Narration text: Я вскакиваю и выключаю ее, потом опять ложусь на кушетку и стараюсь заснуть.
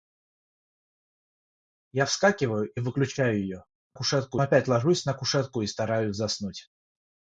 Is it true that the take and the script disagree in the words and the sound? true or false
true